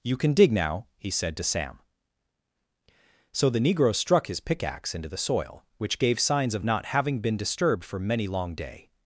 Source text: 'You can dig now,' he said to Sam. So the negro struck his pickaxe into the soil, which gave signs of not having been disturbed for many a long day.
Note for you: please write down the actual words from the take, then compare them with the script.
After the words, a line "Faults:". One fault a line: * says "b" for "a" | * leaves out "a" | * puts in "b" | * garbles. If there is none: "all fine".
'You can dig now,' he said to Sam. So the negro struck his pickaxe into the soil, which gave signs of not having been disturbed for many long day.
Faults:
* leaves out "a"